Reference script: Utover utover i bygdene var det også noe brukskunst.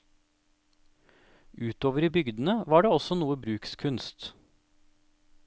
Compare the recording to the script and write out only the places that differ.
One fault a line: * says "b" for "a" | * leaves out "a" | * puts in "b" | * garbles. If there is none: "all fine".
* leaves out "utover"